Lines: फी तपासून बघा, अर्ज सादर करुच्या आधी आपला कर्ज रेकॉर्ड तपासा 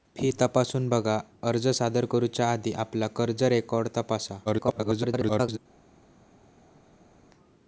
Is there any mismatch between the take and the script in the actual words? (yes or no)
yes